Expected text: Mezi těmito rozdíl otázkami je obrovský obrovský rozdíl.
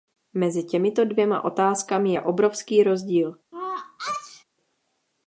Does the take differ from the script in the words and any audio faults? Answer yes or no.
yes